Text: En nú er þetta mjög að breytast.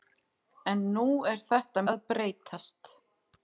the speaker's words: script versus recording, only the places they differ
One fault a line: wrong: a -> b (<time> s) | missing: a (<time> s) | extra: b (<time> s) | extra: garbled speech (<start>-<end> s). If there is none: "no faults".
missing: mjög (1.9 s)